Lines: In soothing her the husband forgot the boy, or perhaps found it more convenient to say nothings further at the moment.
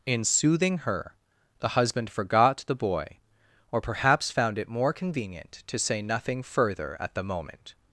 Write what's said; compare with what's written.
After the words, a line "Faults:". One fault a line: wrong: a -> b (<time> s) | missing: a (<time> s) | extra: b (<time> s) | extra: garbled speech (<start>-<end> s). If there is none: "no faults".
In soothing her the husband forgot the boy, or perhaps found it more convenient to say nothing further at the moment.
Faults:
wrong: nothings -> nothing (6.0 s)